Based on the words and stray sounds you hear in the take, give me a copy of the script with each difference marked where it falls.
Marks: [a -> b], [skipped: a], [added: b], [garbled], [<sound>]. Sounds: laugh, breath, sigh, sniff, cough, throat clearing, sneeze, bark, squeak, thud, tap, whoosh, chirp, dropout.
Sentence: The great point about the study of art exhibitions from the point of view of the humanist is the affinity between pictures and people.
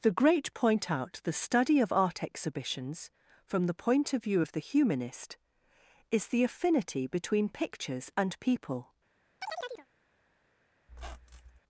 The great point [about -> out] the study of art exhibitions from the point of view of the humanist is the affinity between pictures and people. [chirp] [squeak]